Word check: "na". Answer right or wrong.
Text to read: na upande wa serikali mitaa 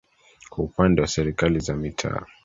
wrong